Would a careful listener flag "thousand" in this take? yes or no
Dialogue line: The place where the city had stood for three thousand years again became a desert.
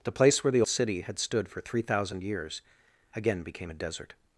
no